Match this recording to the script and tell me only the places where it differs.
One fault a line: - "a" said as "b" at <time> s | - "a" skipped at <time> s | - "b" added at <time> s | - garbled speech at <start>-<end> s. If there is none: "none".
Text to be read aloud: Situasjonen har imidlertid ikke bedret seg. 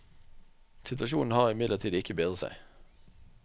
none